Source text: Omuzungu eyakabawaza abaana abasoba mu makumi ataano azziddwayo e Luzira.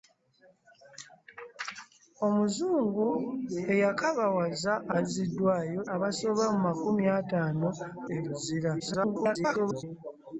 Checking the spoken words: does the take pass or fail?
fail